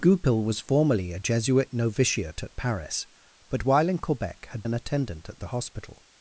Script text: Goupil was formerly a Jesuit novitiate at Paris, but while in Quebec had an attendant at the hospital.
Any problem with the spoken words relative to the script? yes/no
no